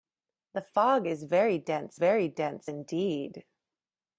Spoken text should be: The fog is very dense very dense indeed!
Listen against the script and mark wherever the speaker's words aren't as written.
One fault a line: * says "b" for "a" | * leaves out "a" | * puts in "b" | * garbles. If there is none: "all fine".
all fine